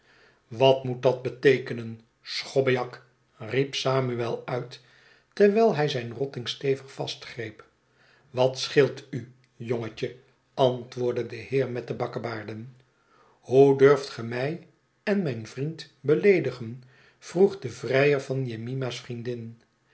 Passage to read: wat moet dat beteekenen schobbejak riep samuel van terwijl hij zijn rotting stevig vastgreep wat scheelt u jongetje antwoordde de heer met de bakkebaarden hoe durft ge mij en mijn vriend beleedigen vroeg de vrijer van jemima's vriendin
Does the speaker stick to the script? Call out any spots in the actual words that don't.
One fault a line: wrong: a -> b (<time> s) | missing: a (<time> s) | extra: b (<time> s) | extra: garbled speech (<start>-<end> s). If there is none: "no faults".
wrong: van -> uit (4.5 s)